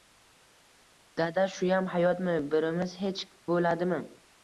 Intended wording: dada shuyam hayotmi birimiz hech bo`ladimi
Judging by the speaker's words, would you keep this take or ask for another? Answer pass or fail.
pass